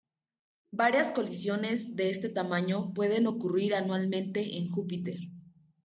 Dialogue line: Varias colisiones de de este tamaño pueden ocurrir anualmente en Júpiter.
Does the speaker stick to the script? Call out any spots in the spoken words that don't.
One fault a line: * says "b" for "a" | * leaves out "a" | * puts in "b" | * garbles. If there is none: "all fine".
* leaves out "de"